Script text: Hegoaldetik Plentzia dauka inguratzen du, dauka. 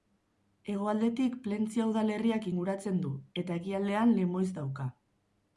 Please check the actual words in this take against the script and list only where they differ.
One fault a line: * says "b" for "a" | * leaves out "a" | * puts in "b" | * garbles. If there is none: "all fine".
* says "udalerriak" for "dauka"
* puts in "eta ekialdean Lemoiz"